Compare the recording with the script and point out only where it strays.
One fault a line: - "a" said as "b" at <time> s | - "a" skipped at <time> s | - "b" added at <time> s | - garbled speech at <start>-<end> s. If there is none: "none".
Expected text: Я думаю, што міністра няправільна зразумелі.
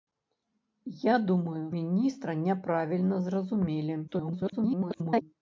- "што" skipped at 1.6 s
- garbled speech at 4.1-5.2 s